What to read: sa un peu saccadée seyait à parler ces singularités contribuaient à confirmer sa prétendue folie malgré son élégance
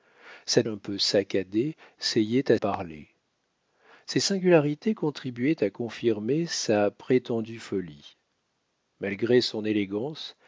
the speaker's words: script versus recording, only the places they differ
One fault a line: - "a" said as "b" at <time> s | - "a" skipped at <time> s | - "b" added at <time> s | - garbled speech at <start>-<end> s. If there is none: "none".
none